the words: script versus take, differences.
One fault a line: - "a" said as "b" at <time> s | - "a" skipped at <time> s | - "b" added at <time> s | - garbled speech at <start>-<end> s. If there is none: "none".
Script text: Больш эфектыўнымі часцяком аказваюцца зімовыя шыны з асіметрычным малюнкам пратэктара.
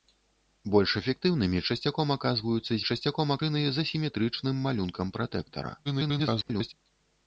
- "зімовыя" said as "часцяком" at 2.9 s
- garbled speech at 5.8-6.7 s